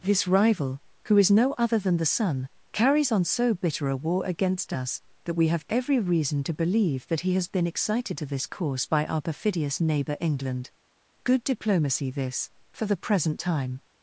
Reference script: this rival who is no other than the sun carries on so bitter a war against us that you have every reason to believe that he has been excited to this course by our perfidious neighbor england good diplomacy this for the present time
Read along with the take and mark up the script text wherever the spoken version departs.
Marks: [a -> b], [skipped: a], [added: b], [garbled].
this rival who is no other than the sun carries on so bitter a war against us that [you -> we] have every reason to believe that he has been excited to this course by our perfidious neighbor england good diplomacy this for the present time